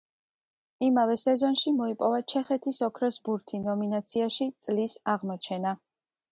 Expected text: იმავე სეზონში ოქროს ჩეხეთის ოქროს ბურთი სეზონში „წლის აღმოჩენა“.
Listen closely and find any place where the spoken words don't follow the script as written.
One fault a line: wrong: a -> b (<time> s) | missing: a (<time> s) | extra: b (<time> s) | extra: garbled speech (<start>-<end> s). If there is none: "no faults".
wrong: ოქროს -> მოიპოვა (1.8 s)
wrong: სეზონში -> ნომინაციაში (3.7 s)